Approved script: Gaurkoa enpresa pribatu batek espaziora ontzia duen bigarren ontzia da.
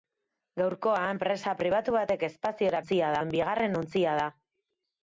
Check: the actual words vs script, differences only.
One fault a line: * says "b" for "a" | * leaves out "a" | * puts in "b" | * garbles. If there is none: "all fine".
all fine